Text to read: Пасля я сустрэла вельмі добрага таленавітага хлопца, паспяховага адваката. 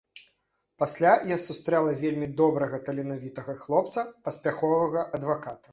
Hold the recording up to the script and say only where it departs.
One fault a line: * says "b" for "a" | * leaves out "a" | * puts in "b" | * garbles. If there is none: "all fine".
all fine